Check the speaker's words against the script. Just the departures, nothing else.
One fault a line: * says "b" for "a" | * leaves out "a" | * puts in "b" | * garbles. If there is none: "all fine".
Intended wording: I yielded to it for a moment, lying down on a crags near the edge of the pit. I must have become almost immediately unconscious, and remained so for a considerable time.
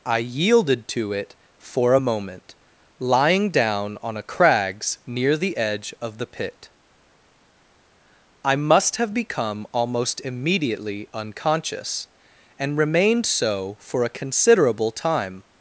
all fine